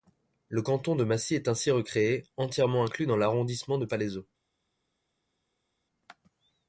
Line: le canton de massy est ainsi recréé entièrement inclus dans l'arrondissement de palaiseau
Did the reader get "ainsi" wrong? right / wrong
right